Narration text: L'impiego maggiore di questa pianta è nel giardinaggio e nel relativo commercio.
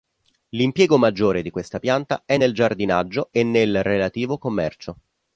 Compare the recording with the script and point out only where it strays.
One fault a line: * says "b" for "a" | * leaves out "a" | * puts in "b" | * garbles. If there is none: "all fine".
all fine